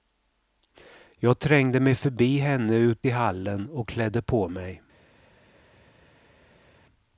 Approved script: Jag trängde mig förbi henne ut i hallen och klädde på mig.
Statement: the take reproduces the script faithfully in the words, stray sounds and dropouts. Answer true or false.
true